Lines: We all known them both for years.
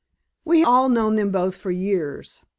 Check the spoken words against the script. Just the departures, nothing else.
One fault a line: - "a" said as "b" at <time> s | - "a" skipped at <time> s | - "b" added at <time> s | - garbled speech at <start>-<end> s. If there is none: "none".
none